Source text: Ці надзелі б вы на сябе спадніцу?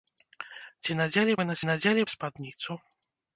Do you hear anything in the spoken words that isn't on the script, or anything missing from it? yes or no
yes